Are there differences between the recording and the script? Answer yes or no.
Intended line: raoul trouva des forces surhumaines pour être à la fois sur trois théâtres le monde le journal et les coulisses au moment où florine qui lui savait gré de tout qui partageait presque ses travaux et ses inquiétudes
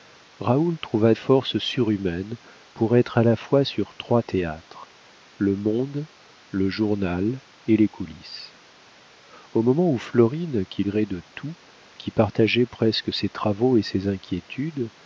yes